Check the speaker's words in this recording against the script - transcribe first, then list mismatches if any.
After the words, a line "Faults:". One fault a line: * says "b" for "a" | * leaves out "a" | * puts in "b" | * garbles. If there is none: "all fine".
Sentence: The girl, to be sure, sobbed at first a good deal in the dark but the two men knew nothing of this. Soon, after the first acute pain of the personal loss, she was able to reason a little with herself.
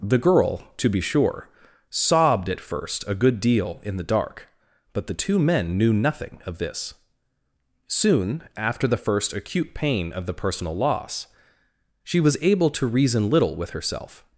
The girl, to be sure, sobbed at first a good deal in the dark but the two men knew nothing of this. Soon, after the first acute pain of the personal loss, she was able to reason little with herself.
Faults:
* leaves out "a"